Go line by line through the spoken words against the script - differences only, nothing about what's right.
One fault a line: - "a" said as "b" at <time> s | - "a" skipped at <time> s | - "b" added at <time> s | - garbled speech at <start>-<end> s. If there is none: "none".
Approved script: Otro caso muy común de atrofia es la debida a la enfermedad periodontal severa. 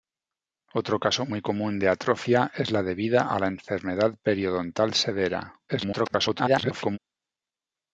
- garbled speech at 5.7-7.0 s